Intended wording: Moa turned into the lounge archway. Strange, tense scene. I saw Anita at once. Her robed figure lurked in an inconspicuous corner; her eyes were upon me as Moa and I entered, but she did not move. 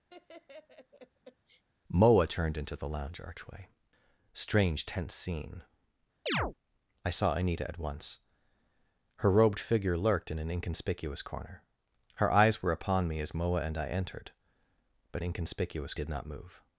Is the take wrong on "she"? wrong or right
wrong